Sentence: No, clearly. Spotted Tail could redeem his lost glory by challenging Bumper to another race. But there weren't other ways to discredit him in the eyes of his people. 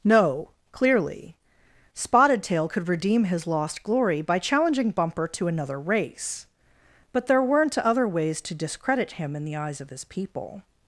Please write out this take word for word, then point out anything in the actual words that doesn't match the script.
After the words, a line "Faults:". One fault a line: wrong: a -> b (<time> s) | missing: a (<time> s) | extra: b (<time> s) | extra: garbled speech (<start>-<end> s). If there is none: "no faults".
No, clearly. Spotted Tail could redeem his lost glory by challenging Bumper to another race. But there weren't other ways to discredit him in the eyes of his people.
Faults:
no faults